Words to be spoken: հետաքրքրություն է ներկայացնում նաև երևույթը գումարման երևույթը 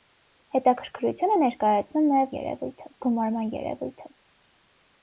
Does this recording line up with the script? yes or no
yes